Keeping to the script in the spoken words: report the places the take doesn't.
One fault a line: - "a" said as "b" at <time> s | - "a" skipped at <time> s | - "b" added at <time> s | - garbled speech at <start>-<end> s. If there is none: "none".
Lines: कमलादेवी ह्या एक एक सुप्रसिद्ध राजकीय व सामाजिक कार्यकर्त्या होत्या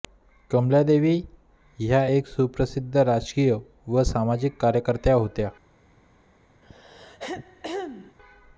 - "एक" skipped at 2.3 s